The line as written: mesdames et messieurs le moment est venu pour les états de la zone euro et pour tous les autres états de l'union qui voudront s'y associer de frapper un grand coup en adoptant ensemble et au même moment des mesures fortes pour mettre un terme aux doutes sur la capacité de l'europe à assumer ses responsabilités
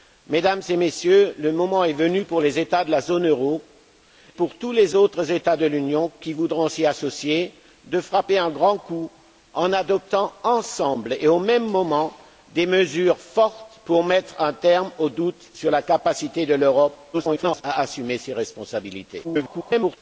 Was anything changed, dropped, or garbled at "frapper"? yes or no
no